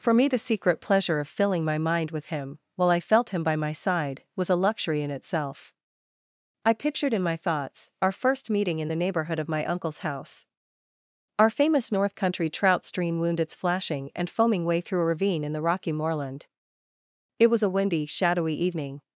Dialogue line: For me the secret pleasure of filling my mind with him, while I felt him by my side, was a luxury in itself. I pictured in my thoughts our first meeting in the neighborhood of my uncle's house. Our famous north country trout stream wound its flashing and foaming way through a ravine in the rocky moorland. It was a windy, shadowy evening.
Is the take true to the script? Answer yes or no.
yes